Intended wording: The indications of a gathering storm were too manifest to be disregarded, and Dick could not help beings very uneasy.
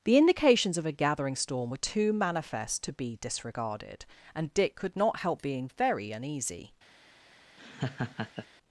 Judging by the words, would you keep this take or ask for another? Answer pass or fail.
fail